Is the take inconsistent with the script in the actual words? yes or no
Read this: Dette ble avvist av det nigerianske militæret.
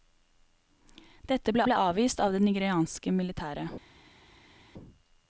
yes